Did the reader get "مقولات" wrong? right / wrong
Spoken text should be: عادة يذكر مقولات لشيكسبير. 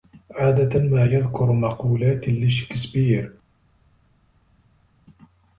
right